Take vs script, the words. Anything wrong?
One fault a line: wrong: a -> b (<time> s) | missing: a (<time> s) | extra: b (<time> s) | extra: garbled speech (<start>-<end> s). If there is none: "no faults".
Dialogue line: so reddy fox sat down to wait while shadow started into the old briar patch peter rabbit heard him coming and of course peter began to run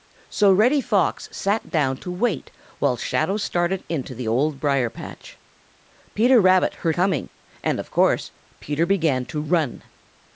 missing: him (7.0 s)